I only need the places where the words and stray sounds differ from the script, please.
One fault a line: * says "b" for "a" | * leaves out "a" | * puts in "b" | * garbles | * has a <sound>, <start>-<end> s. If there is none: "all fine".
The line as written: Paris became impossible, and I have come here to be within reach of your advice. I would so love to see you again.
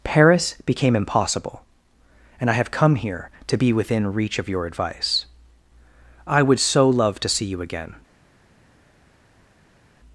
all fine